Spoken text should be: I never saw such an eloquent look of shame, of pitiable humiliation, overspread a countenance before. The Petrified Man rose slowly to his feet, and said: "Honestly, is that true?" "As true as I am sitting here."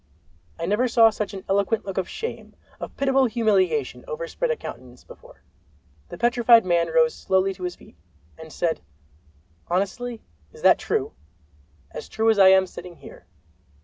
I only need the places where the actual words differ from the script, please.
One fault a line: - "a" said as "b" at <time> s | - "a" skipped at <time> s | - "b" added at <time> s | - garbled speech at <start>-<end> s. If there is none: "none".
none